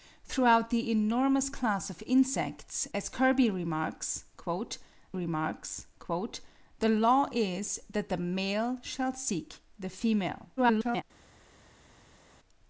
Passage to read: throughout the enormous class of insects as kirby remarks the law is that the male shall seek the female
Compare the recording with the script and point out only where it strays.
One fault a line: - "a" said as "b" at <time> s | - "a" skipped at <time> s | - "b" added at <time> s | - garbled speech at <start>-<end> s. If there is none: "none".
- "remarks" added at 5.1 s
- garbled speech at 10.6-11.0 s